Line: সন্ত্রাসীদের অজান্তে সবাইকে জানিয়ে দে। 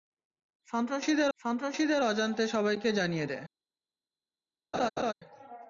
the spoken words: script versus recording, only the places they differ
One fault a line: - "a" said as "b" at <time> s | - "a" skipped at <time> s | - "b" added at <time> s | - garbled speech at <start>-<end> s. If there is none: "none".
- "সন্ত্রাসীদের" added at 1.4 s